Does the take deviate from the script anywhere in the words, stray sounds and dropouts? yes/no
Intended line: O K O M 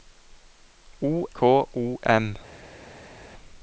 no